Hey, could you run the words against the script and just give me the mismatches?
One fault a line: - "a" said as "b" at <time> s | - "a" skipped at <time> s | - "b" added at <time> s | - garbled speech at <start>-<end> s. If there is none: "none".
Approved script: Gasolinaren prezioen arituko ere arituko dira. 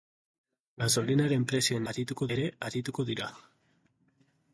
none